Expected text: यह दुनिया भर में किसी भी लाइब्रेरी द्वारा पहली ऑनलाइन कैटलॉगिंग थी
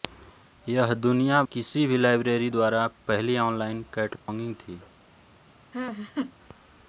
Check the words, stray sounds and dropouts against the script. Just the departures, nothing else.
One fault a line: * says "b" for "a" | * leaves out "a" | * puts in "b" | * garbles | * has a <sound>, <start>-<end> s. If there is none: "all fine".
* leaves out "भर में"
* has a dropout, 4.2-4.3 s
* has a laugh, 5.7-6.3 s